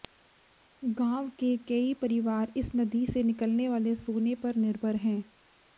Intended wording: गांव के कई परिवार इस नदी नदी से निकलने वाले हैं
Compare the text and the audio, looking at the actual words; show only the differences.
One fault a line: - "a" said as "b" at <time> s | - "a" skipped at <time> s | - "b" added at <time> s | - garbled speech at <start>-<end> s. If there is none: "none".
- "नदी" skipped at 3.0 s
- "सोने पर निर्भर" added at 4.0 s